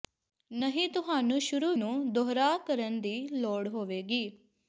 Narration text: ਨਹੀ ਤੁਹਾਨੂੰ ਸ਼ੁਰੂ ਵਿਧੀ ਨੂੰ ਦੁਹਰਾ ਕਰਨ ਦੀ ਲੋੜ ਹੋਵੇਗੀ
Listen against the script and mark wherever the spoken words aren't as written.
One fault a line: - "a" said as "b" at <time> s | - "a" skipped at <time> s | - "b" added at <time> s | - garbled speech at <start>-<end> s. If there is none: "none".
- "ਵਿਧੀ" skipped at 1.7 s